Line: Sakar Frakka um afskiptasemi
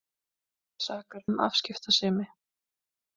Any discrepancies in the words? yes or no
yes